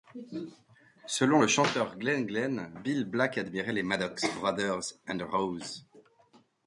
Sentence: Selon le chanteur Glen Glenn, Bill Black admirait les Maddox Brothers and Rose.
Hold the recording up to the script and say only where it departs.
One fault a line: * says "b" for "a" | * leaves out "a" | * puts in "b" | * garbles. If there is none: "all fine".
all fine